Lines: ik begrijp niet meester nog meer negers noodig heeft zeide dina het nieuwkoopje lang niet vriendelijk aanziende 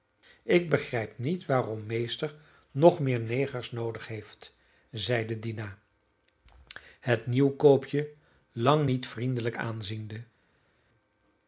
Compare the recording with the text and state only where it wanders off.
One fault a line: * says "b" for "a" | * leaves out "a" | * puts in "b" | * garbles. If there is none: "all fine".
* puts in "waarom"